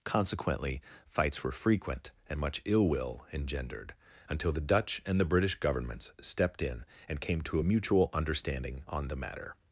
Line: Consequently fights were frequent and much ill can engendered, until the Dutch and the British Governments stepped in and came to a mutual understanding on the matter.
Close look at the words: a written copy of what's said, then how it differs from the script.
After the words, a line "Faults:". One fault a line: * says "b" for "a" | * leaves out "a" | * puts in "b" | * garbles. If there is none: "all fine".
Consequently fights were frequent and much ill will engendered, until the Dutch and the British Governments stepped in and came to a mutual understanding on the matter.
Faults:
* says "will" for "can"